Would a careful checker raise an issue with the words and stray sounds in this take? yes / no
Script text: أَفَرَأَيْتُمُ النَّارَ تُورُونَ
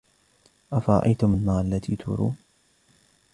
yes